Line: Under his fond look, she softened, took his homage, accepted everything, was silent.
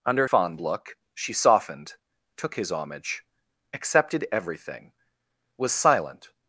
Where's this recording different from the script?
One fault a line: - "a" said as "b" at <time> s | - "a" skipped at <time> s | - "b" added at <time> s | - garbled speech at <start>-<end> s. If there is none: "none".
- "his" skipped at 0.3 s